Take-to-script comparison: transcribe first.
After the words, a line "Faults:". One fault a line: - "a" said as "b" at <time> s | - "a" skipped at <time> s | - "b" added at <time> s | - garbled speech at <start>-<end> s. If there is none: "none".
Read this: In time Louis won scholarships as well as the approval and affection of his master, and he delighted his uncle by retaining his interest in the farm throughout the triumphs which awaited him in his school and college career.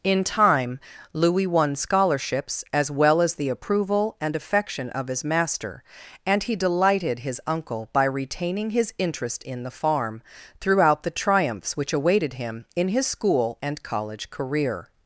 In time Louis won scholarships as well as the approval and affection of his master, and he delighted his uncle by retaining his interest in the farm throughout the triumphs which awaited him in his school and college career.
Faults:
none